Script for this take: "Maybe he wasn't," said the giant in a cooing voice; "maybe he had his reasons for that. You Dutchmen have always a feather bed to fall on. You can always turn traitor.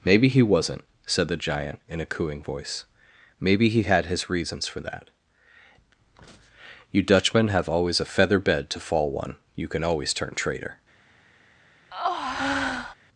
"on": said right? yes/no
no